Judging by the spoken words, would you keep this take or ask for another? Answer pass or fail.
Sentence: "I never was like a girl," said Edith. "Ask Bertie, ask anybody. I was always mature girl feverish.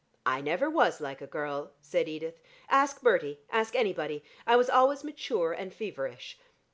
fail